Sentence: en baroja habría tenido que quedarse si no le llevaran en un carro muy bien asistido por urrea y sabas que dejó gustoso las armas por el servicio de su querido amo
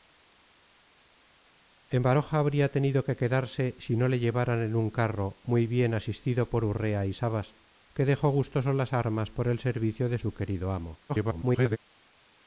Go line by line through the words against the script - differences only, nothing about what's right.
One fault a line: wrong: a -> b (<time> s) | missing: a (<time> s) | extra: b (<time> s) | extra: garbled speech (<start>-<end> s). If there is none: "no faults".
extra: garbled speech (11.1-11.8 s)